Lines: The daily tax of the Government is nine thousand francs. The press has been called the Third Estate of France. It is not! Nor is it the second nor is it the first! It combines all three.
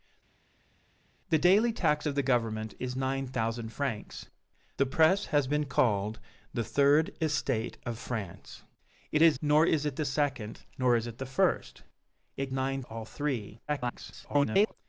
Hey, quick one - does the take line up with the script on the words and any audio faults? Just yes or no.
no